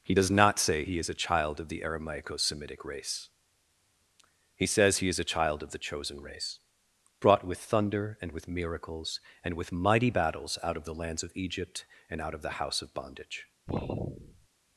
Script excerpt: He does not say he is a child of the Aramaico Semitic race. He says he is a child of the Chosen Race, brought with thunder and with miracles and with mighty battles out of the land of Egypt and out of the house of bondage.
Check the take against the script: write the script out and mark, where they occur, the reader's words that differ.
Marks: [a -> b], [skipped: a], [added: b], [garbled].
He does not say he is a child of the Aramaico Semitic race. He says he is a child of the Chosen Race, brought with thunder and with miracles and with mighty battles out of the [land -> lands] of Egypt and out of the house of bondage.